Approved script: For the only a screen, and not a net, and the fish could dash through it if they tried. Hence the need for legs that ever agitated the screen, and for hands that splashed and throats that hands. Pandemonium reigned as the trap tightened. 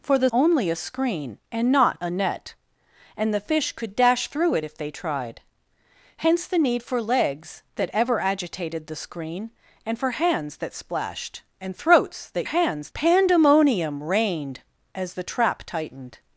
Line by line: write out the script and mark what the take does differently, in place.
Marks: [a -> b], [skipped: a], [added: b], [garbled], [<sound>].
For the only a screen, and not a net, and the fish could dash through it if they tried. Hence the need for legs that ever agitated the screen, and for hands that splashed and throats that hands. Pandemonium reigned as the trap tightened.